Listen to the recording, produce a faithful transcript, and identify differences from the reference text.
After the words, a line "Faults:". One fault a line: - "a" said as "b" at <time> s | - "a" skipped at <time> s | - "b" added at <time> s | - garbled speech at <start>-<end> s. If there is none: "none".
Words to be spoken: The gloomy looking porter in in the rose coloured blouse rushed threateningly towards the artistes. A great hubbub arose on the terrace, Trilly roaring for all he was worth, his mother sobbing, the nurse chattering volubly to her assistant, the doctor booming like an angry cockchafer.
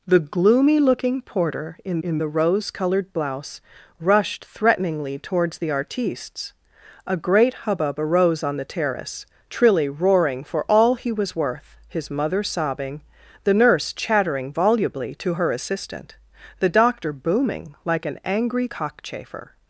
The gloomy looking porter in in the rose coloured blouse rushed threateningly towards the artistes. A great hubbub arose on the terrace, Trilly roaring for all he was worth, his mother sobbing, the nurse chattering volubly to her assistant, the doctor booming like an angry cockchafer.
Faults:
none